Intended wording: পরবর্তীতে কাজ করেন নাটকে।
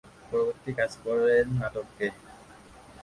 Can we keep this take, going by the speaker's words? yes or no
yes